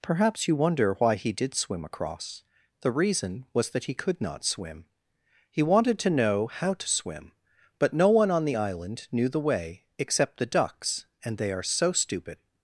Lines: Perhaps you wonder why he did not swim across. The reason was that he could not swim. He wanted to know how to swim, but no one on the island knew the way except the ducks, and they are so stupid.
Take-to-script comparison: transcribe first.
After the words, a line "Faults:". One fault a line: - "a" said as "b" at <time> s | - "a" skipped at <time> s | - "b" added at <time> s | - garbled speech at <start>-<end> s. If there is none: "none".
Perhaps you wonder why he did swim across. The reason was that he could not swim. He wanted to know how to swim, but no one on the island knew the way except the ducks, and they are so stupid.
Faults:
- "not" skipped at 1.5 s